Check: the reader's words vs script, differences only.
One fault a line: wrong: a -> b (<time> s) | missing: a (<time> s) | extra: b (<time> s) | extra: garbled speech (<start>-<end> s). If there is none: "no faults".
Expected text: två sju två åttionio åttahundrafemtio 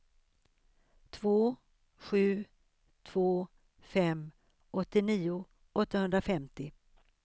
extra: fem (3.8 s)